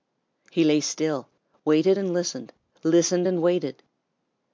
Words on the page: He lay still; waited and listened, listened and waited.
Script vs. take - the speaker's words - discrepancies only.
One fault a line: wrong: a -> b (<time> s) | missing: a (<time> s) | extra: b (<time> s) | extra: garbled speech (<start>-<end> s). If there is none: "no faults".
no faults